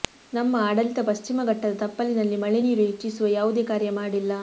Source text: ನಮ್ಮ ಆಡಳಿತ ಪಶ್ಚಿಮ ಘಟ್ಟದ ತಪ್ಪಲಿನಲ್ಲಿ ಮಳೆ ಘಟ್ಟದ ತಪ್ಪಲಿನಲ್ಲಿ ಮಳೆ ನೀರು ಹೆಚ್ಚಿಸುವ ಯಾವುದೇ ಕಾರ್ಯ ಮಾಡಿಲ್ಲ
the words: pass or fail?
fail